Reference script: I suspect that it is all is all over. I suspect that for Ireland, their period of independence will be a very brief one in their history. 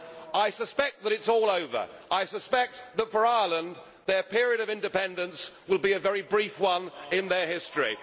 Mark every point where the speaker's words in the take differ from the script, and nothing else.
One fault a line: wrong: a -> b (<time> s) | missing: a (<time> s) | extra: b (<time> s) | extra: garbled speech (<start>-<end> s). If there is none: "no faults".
missing: is all (1.5 s)